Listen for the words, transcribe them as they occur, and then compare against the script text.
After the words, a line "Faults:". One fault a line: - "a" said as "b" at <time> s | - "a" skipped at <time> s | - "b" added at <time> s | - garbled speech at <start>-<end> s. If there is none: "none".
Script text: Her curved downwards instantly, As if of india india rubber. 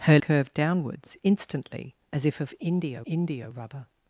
Her curved downwards instantly, As if of india india rubber.
Faults:
none